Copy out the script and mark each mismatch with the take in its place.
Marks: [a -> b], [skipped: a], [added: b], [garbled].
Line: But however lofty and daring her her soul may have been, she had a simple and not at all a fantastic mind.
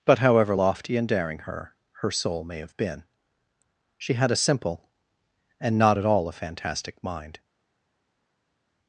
But however lofty and daring her her soul may have been, she had a simple and not at all a fantastic mind.